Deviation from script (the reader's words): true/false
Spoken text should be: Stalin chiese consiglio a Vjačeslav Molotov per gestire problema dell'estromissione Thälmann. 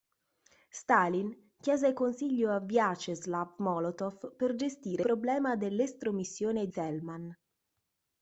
false